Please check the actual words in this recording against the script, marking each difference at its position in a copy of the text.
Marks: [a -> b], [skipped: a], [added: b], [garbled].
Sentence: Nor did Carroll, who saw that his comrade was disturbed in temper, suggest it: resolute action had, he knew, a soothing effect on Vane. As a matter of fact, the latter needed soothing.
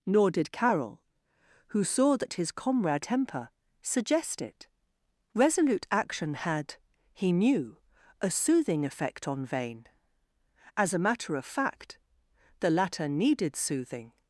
Nor did Carroll, who saw that his comrade [skipped: was disturbed in] temper, suggest it: resolute action had, he knew, a soothing effect on Vane. As a matter of fact, the latter needed soothing.